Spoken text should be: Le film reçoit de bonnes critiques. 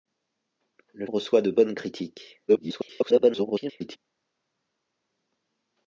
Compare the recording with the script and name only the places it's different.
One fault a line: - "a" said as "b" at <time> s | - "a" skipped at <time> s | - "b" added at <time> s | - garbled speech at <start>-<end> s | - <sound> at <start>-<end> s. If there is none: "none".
- "film" skipped at 1.1 s
- garbled speech at 2.5-4.0 s